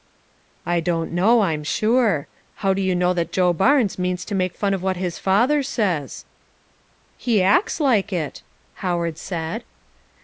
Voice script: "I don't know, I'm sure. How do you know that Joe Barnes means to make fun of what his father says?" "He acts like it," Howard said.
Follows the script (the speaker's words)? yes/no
yes